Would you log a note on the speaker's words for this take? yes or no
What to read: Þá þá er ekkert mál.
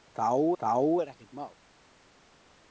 no